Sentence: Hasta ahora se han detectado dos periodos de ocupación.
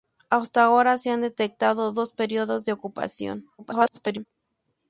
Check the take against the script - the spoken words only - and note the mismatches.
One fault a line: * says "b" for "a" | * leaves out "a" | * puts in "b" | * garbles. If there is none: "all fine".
* garbles